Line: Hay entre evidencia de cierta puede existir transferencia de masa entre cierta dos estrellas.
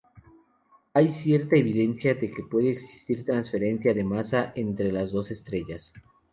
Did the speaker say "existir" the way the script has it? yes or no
yes